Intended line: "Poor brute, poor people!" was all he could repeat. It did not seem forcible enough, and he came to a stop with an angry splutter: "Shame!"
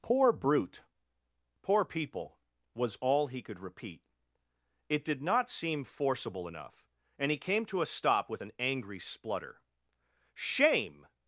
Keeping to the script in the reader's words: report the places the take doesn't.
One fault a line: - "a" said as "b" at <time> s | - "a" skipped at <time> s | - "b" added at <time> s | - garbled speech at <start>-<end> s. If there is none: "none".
none